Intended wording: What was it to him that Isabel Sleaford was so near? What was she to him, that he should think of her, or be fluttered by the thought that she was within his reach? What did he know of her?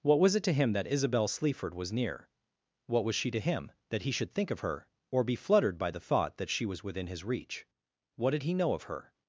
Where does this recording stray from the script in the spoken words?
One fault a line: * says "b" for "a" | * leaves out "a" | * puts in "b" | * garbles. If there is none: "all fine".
* leaves out "so"